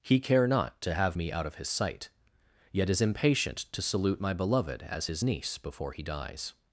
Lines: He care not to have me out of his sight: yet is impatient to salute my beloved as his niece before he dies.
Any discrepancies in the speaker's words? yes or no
no